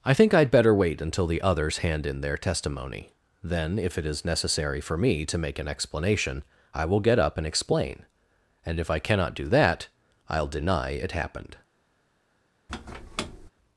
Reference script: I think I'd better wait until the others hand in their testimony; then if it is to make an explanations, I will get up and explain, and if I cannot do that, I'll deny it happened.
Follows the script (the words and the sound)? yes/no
no